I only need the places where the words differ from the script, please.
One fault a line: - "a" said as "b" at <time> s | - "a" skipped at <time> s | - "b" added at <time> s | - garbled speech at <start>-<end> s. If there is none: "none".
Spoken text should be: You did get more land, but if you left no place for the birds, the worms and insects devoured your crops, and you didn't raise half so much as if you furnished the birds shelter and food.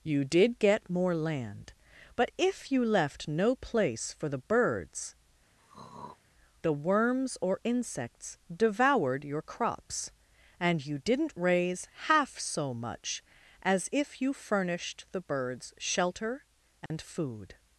- "and" said as "or" at 7.4 s